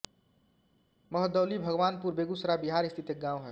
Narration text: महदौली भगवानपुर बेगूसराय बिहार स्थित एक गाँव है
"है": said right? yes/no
yes